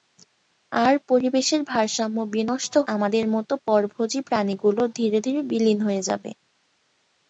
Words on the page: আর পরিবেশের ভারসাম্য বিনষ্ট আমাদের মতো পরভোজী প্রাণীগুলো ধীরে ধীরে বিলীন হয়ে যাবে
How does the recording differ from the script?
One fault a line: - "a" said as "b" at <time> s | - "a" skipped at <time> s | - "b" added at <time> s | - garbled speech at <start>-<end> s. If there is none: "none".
none